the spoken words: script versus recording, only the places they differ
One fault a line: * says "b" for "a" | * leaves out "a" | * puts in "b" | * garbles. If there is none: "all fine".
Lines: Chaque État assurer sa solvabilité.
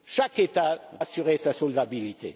all fine